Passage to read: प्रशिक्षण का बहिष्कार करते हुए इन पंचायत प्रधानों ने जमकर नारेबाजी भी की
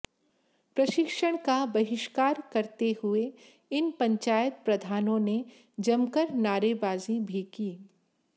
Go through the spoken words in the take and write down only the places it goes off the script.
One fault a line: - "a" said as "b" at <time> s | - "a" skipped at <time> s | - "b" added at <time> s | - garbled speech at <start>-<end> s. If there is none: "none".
none